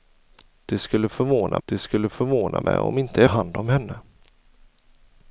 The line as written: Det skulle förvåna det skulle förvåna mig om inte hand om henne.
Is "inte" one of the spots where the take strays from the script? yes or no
no